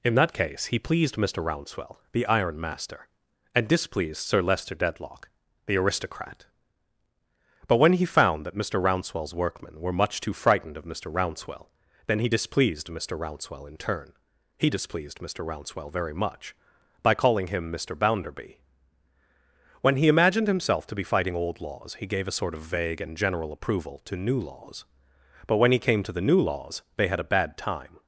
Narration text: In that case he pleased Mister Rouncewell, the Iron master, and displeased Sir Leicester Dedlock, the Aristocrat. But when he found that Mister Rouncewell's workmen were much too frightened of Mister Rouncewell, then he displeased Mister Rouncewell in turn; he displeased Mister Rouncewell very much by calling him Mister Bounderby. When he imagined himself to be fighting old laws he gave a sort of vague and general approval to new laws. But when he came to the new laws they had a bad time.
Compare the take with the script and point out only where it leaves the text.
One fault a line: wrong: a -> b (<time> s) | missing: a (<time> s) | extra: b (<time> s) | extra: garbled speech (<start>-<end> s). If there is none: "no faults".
no faults